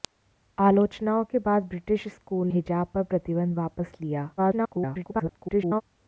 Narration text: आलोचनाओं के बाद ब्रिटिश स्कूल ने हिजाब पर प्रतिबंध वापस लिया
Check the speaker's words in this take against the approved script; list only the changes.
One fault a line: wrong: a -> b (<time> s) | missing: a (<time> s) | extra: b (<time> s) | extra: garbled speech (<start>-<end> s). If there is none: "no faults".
missing: ने (2.5 s)
extra: garbled speech (4.4-5.8 s)